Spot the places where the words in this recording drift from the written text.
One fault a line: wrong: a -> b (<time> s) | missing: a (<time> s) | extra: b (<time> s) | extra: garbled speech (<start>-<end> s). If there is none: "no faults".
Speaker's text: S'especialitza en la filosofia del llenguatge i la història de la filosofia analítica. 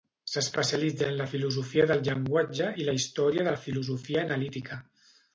no faults